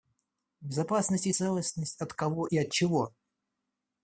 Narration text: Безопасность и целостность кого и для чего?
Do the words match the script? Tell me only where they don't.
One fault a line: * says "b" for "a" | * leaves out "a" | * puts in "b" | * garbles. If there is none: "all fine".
* puts in "от"
* says "от" for "для"